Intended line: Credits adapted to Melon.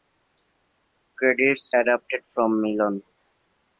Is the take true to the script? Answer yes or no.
no